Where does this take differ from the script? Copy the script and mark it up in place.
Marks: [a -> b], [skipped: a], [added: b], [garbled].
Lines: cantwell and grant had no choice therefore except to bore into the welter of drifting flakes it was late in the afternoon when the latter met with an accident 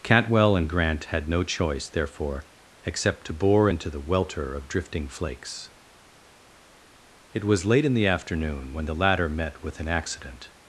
cantwell and grant had no choice therefore except to bore into the welter of drifting flakes it was late in the afternoon when the latter met with an accident